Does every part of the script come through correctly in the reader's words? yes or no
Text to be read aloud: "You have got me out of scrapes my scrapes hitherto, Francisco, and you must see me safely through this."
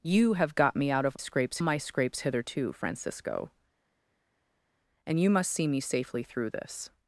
yes